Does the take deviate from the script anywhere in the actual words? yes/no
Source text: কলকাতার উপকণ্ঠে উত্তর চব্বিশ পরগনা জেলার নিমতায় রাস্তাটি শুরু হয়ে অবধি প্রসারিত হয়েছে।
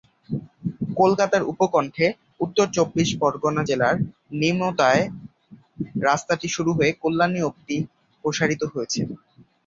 yes